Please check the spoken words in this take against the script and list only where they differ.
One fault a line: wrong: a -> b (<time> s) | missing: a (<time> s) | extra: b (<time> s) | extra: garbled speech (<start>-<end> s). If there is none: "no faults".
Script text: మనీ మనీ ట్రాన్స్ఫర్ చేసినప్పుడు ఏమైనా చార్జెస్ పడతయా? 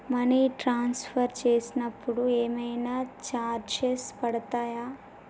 missing: మనీ (0.5 s)